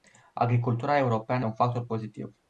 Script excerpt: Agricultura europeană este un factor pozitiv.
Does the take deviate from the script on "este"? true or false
true